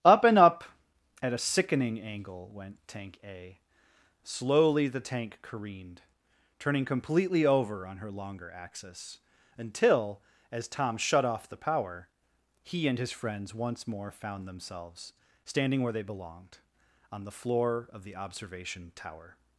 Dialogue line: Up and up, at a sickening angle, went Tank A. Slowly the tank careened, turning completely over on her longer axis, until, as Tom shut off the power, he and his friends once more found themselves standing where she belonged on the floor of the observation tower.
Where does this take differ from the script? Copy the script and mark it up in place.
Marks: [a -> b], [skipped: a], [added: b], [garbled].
Up and up, at a sickening angle, went Tank A. Slowly the tank careened, turning completely over on her longer axis, until, as Tom shut off the power, he and his friends once more found themselves standing where [she -> they] belonged on the floor of the observation tower.